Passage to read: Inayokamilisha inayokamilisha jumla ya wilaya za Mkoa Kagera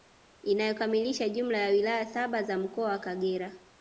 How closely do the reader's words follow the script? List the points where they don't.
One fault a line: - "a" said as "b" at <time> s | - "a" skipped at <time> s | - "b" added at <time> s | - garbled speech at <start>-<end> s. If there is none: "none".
- "inayokamilisha" skipped at 1.3 s
- "saba" added at 2.0 s
- "wa" added at 2.9 s